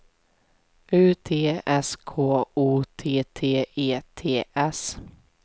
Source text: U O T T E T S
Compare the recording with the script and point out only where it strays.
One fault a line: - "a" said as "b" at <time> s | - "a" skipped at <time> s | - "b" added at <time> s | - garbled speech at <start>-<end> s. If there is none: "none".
- "T S K" added at 1.2 s